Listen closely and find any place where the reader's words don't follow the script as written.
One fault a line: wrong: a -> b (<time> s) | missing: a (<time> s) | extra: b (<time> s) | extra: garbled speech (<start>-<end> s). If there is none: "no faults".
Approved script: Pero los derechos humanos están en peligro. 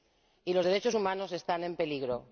wrong: Pero -> Y (0.4 s)